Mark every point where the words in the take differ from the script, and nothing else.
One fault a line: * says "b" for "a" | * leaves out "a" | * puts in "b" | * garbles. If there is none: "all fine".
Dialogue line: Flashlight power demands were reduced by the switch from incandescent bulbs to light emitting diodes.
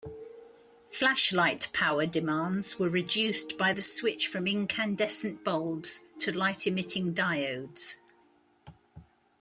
all fine